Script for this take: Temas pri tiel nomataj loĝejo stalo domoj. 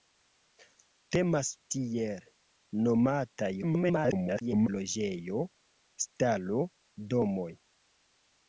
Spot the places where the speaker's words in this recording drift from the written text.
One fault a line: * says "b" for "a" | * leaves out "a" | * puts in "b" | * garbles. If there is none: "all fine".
* leaves out "pri"
* garbles